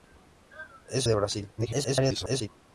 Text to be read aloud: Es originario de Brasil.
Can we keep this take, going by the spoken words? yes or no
no